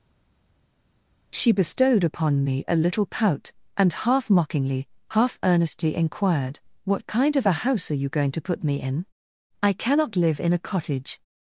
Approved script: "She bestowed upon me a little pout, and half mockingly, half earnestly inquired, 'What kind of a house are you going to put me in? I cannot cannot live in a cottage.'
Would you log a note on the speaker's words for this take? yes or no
yes